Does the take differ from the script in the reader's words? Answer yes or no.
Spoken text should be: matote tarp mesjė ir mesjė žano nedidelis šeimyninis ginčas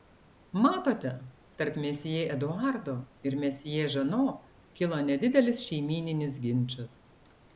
yes